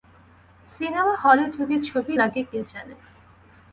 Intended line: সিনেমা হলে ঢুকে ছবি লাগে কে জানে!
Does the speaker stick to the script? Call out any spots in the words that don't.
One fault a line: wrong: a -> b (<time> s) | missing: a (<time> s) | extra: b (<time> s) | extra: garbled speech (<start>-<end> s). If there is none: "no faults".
no faults